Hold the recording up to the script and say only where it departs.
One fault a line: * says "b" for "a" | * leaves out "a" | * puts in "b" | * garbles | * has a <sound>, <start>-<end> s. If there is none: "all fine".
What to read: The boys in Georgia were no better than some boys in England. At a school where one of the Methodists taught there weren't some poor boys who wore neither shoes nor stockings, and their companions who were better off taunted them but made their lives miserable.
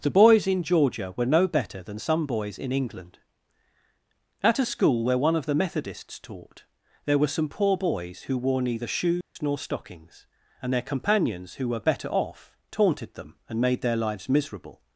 * says "were" for "weren't"
* has a dropout, 9.2-9.4 s
* says "and" for "but"